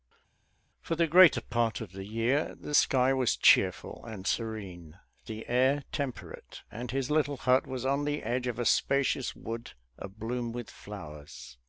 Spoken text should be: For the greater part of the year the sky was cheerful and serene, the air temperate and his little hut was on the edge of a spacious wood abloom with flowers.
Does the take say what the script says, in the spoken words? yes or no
yes